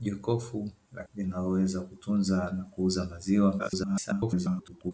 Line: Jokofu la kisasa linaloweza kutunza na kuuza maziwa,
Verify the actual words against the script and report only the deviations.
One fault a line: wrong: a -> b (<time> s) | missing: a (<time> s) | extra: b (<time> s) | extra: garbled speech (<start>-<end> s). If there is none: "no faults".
missing: kisasa (1.0 s)
extra: garbled speech (3.6-4.9 s)